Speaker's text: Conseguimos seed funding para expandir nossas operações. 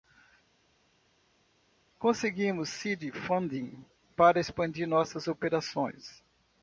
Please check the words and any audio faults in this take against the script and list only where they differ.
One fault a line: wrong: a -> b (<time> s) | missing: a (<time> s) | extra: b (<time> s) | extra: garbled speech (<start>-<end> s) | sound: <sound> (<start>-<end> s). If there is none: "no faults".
no faults